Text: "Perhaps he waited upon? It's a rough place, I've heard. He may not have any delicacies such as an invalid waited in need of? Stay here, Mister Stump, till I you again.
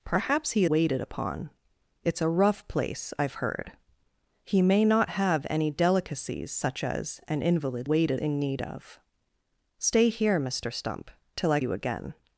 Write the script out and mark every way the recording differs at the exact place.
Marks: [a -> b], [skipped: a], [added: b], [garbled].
"Perhaps he waited upon? It's a rough place, I've heard. He may not have any delicacies such as an invalid waited in need of? Stay here, Mister Stump, till I you again.